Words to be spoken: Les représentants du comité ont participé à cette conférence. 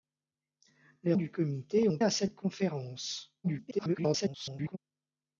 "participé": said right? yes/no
no